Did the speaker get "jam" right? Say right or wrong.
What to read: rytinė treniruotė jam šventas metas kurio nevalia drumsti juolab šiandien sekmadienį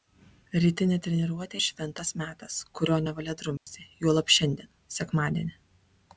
wrong